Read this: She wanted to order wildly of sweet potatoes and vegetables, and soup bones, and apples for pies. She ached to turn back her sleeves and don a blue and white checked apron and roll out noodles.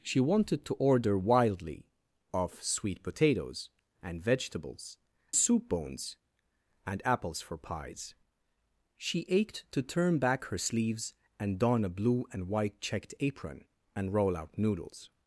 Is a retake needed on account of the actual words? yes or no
yes